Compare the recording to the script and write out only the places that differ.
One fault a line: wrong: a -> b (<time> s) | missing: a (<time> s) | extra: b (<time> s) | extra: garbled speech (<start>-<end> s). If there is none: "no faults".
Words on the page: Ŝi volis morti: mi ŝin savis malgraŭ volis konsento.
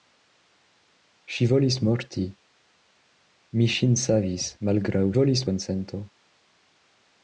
no faults